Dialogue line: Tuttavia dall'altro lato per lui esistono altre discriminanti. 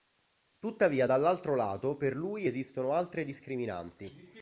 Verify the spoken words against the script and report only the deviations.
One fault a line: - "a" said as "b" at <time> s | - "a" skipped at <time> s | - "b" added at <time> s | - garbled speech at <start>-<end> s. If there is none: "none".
none